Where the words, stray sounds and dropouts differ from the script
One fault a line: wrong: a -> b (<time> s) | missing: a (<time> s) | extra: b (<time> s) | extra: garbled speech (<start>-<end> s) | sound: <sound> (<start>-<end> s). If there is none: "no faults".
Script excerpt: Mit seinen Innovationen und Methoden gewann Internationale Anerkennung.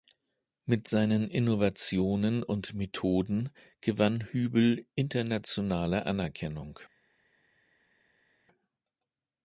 extra: Hübl (4.3 s)